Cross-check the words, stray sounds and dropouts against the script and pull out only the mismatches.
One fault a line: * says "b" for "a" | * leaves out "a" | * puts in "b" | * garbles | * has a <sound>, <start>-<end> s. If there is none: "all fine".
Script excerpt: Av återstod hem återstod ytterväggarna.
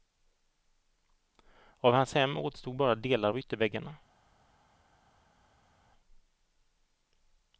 * says "hans" for "återstod"
* puts in "bara delar av"